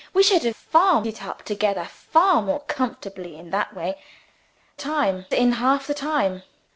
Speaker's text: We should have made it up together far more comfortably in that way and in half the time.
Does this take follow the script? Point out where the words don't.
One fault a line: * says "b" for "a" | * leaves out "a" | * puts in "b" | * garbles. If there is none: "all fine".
* says "far" for "made"
* says "time" for "and"